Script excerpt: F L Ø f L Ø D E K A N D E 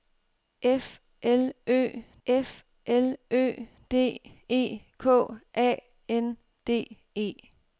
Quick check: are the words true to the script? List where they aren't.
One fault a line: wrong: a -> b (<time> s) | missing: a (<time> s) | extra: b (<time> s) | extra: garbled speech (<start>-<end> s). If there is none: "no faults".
no faults